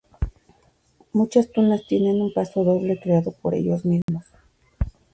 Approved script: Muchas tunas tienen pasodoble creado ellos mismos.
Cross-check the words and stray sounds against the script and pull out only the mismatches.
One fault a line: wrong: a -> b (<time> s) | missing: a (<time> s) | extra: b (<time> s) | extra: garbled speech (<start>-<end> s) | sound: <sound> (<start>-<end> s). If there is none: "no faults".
extra: un (2.2 s)
extra: por (3.4 s)
sound: dropout (4.0-4.1 s)